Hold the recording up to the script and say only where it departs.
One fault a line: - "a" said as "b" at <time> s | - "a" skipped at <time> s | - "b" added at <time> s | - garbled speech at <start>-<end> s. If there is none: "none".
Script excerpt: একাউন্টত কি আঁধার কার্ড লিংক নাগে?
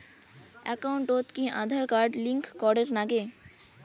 - "করের" added at 2.6 s